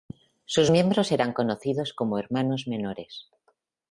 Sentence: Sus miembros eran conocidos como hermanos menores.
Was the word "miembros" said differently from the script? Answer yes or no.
no